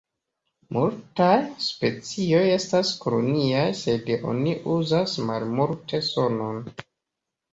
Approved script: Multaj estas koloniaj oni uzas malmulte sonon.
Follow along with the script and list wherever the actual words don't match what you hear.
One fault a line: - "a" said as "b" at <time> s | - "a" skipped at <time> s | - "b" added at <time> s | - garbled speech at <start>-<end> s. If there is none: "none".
- "specioj" added at 1.6 s
- "sed" added at 3.8 s